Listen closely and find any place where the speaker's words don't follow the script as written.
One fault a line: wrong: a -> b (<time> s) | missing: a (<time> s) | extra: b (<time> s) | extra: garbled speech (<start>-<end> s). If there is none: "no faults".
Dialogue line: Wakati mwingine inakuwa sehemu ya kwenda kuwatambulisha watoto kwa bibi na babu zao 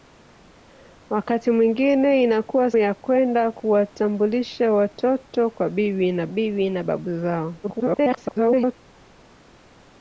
missing: sehemu (2.7 s)
extra: bibi na (6.3 s)
extra: garbled speech (7.6-8.7 s)